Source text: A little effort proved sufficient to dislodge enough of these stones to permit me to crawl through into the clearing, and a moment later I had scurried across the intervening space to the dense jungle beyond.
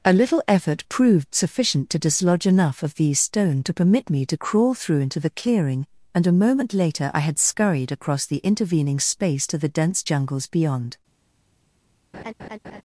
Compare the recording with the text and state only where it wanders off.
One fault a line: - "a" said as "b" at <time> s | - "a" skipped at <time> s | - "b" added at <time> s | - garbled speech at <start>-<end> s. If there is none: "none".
- "stones" said as "stone" at 3.2 s
- "jungle" said as "jungles" at 10.0 s